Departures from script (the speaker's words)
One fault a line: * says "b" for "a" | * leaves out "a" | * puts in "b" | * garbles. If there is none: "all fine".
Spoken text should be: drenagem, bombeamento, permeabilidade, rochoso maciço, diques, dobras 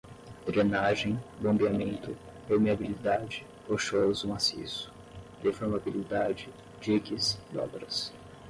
* puts in "deformabilidade"